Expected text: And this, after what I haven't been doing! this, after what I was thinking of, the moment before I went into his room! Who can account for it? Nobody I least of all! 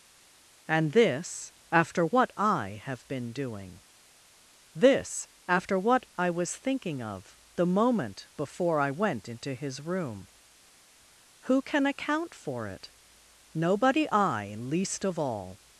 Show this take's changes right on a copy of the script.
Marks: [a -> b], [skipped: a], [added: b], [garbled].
And this, after what I [haven't -> have] been doing! this, after what I was thinking of, the moment before I went into his room! Who can account for it? Nobody I least of all!